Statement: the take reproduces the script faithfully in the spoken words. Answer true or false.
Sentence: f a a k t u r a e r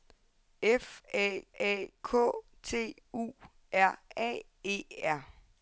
true